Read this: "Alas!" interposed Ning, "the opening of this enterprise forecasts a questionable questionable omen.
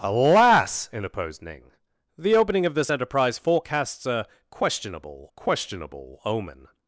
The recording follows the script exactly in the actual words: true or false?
true